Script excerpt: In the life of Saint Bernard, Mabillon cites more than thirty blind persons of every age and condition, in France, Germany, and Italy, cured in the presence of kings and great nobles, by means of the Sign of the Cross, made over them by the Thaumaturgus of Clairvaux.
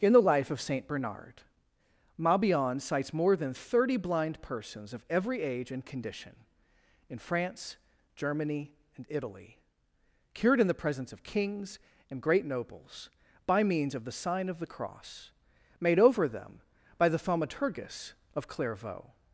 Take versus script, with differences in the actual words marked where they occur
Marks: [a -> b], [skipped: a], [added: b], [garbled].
In the life of Saint Bernard, Mabillon cites more than thirty blind persons of every age and condition, in France, Germany, and Italy, cured in the presence of kings and great nobles, by means of the Sign of the Cross, made over them by the Thaumaturgus of Clairvaux.